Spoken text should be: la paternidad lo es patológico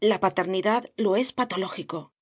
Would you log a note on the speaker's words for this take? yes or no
no